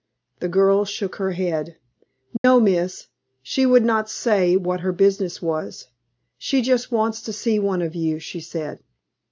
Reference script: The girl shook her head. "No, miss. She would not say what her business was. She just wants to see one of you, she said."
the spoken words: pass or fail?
pass